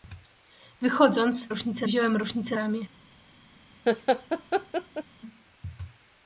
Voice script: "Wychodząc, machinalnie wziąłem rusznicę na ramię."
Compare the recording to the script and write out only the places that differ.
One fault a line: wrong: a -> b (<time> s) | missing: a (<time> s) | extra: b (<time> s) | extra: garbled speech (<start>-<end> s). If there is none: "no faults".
wrong: machinalnie -> rusznicę (1.5 s)
missing: na (2.6 s)